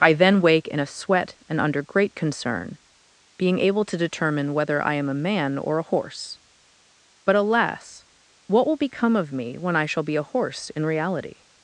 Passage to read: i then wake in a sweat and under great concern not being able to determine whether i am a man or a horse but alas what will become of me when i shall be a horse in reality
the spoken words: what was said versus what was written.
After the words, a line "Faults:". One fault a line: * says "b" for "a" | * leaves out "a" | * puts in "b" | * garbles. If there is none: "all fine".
i then wake in a sweat and under great concern being able to determine whether i am a man or a horse but alas what will become of me when i shall be a horse in reality
Faults:
* leaves out "not"